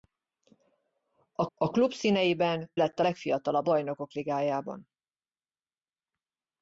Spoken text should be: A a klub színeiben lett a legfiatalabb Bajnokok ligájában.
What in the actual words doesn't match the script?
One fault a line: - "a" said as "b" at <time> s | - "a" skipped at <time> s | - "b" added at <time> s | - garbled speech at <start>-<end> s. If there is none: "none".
none